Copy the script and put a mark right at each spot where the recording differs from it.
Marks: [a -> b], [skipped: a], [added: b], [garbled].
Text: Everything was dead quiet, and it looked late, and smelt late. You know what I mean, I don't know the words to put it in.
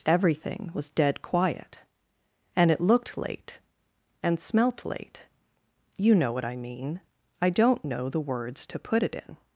Everything was dead quiet, and it looked late, and smelt late. You know what I mean, I don't know the words to put it in.